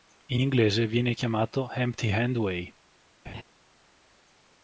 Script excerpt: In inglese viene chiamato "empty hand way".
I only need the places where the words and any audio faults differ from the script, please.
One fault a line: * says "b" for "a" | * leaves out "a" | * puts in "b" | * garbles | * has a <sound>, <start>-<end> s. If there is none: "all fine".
* has a laugh, 3.2-3.4 s